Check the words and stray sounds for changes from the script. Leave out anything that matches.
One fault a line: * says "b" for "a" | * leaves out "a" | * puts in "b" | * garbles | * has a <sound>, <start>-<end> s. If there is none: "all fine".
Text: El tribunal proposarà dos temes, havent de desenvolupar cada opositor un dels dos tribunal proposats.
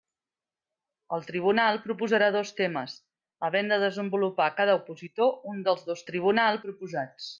all fine